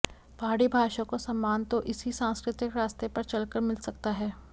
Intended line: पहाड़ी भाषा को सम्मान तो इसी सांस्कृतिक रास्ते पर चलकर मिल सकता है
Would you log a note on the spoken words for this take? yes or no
no